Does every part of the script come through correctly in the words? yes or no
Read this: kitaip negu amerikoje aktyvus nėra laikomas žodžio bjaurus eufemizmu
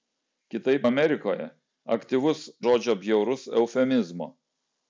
no